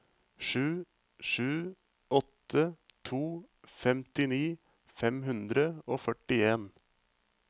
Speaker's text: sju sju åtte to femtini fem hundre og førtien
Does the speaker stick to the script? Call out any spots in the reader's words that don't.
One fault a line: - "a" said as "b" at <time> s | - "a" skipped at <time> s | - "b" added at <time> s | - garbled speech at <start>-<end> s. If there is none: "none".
none